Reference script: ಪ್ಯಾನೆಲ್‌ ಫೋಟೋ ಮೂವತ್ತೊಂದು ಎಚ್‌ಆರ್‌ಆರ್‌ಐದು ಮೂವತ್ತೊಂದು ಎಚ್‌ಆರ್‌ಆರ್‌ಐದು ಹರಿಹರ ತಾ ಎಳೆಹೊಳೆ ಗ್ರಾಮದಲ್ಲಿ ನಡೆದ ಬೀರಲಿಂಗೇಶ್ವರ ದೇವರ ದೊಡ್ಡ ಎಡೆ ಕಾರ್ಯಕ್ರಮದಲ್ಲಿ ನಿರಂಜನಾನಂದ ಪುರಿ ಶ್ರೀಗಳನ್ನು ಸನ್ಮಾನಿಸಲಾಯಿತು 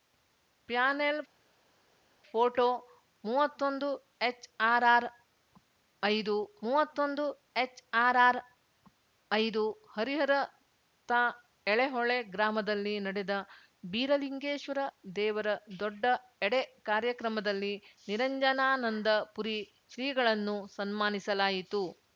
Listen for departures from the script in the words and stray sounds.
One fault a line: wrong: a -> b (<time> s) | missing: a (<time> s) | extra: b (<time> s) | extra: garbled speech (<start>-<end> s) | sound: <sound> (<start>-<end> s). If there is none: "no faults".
no faults